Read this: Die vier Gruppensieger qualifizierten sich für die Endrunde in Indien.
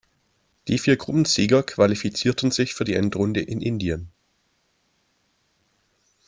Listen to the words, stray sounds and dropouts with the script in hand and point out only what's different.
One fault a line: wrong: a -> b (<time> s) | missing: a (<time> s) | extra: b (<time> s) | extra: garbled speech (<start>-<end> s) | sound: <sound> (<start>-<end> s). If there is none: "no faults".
no faults